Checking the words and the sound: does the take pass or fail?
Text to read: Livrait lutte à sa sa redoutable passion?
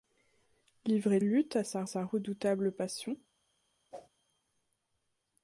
fail